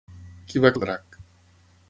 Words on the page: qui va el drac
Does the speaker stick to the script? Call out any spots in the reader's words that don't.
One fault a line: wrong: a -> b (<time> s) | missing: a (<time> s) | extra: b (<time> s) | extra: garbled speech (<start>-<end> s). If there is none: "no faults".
no faults